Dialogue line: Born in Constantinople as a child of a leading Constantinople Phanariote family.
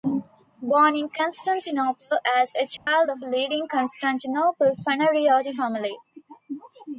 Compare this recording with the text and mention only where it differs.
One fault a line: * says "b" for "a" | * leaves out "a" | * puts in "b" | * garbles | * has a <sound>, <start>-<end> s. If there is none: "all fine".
* has a dropout, 2.8-2.9 s